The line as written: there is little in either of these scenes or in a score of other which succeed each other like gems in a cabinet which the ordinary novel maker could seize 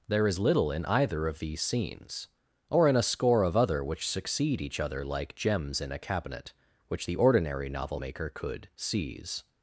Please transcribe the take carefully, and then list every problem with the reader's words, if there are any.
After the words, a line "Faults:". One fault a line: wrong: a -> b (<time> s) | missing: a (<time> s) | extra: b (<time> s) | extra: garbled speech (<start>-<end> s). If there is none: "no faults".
there is little in either of these scenes or in a score of other which succeed each other like gems in a cabinet which the ordinary novel maker could seize
Faults:
no faults